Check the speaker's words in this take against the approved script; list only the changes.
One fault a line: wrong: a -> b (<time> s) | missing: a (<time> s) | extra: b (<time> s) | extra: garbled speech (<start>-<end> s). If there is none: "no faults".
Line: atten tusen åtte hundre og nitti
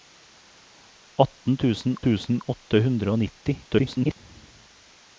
extra: tusen (2.1 s)
extra: garbled speech (3.6-4.2 s)